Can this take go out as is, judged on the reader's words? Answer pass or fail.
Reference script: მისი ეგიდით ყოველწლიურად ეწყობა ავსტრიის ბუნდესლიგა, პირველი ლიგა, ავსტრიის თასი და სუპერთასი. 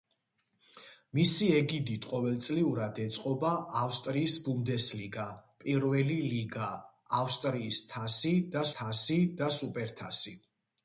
fail